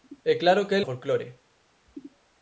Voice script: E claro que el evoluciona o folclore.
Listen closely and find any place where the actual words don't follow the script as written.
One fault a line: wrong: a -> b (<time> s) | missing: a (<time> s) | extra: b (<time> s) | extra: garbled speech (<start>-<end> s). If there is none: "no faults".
missing: evoluciona (0.8 s)